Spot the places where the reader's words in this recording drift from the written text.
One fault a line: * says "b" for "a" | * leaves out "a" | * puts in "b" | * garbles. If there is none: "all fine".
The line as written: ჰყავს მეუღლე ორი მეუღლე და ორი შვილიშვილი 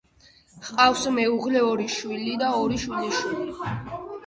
* says "შვილი" for "მეუღლე"